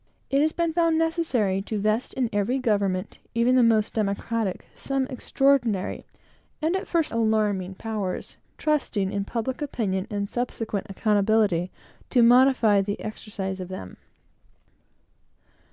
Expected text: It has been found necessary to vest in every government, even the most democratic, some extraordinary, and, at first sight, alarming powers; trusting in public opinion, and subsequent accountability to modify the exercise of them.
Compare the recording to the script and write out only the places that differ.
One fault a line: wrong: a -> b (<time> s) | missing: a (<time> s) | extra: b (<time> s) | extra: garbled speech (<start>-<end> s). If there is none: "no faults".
missing: sight (7.1 s)